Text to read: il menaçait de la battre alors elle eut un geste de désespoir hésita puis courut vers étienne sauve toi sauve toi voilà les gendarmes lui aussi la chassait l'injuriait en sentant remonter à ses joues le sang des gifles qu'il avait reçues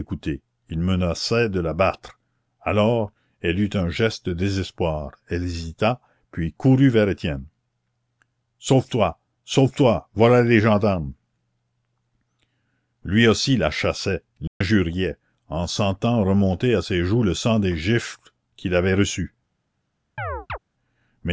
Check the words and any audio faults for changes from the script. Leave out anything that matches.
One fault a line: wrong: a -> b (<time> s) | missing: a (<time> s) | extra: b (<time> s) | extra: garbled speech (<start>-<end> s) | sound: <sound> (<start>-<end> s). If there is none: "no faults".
extra: elle (5.3 s)
sound: dropout (14.5-14.6 s)
sound: chirp (20.2-20.6 s)